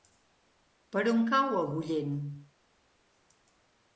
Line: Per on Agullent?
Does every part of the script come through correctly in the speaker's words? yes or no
no